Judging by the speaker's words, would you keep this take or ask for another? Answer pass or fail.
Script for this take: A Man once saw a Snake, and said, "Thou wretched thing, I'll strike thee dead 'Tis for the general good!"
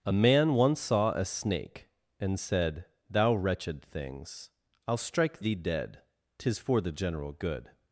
fail